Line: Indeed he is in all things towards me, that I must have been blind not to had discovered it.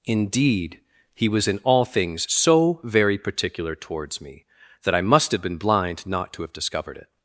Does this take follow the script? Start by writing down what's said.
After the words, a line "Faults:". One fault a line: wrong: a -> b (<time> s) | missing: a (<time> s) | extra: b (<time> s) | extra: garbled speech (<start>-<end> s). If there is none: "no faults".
Indeed he was in all things so very particular towards me, that I must have been blind not to have discovered it.
Faults:
wrong: is -> was (1.3 s)
extra: so very particular (2.3 s)
wrong: had -> have (6.4 s)